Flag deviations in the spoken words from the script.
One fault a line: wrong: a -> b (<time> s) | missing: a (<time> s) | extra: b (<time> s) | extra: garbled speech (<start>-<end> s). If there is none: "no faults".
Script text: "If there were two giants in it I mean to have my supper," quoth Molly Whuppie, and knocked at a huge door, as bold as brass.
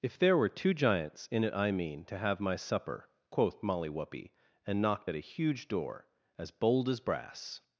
no faults